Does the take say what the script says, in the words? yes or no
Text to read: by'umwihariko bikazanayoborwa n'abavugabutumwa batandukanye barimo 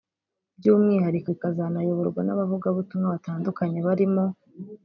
yes